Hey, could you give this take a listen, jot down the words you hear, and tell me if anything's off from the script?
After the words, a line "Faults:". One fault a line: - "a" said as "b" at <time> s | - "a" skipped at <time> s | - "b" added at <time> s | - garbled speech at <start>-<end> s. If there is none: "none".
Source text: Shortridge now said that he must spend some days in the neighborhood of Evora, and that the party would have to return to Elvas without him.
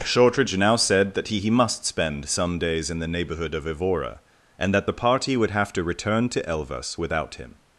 Shortridge now said that he he must spend some days in the neighborhood of Evora, and that the party would have to return to Elvas without him.
Faults:
- "he" added at 1.4 s